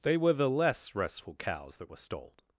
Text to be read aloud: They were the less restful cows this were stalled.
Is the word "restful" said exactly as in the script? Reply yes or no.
yes